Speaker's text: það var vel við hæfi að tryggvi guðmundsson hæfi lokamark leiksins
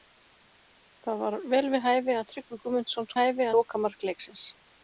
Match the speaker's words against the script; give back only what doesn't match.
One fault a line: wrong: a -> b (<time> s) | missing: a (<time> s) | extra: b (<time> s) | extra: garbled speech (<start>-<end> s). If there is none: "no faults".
no faults